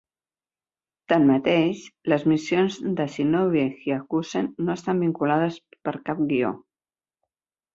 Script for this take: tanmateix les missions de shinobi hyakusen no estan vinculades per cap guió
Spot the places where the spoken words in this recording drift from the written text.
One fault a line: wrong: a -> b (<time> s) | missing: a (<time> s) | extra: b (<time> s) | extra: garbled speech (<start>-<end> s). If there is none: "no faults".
no faults